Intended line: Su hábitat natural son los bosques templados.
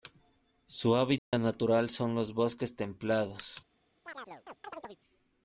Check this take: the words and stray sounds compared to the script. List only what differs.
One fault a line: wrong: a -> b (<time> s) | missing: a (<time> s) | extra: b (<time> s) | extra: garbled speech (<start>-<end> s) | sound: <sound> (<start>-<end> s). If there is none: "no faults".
sound: dropout (1.2-1.3 s)
sound: chirp (4.0-5.0 s)